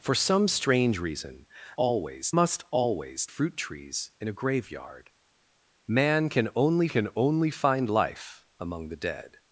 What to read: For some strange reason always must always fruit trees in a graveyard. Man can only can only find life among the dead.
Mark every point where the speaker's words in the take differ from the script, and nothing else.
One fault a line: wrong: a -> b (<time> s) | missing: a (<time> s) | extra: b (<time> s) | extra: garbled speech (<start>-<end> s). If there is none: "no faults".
no faults